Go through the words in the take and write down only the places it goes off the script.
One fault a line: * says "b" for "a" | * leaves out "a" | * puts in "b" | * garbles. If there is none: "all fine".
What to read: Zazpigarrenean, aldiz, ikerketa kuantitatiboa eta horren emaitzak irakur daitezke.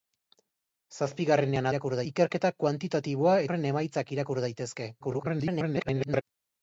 * says "irakur" for "aldiz"
* leaves out "eta"
* garbles